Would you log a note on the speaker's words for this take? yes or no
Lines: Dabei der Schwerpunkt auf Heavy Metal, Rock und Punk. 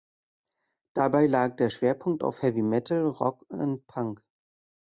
yes